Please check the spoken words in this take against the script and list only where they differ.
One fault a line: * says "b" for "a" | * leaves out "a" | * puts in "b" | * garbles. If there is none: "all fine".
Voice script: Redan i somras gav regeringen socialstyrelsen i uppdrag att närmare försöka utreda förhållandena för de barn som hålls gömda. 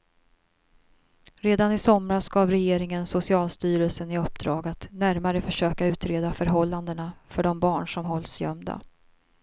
all fine